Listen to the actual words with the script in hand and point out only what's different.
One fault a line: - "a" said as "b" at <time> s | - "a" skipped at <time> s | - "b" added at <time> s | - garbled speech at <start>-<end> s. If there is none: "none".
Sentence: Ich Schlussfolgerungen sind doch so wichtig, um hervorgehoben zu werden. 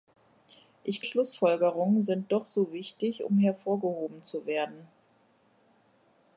none